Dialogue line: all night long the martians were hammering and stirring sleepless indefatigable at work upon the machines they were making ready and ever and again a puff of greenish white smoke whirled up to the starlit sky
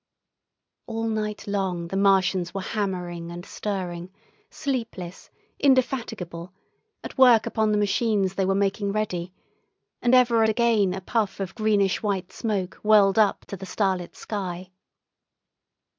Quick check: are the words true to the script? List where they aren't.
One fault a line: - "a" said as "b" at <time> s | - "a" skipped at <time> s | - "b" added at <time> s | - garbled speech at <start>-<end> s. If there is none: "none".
- "and" skipped at 10.4 s